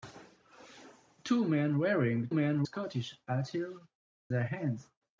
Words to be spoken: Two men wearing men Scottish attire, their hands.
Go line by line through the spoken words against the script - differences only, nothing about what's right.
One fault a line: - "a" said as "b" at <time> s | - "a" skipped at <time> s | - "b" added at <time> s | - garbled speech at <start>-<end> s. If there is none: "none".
none